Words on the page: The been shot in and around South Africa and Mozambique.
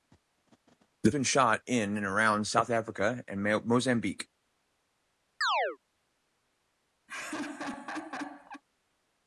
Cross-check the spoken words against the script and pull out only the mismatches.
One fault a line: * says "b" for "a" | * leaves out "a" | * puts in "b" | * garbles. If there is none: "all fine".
all fine